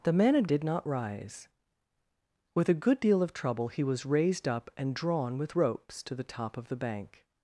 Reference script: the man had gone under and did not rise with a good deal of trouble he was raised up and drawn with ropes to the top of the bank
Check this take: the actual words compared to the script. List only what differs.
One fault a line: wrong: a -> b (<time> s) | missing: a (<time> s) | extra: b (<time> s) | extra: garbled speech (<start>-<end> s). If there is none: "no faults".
missing: gone under and (0.5 s)